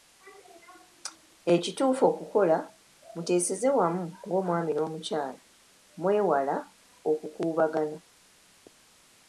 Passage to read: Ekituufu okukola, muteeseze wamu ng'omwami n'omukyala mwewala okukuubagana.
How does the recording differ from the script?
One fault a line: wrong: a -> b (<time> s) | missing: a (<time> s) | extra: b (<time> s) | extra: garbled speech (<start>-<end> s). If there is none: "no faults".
no faults